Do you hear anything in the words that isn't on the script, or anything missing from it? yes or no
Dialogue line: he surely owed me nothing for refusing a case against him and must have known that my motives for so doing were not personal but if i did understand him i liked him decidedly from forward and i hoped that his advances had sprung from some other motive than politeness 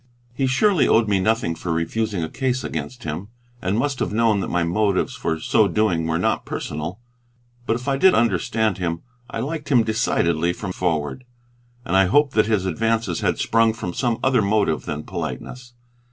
no